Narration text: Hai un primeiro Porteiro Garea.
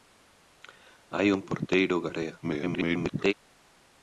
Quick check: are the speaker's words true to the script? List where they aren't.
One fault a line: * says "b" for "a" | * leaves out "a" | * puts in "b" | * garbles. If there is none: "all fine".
* leaves out "primeiro"
* garbles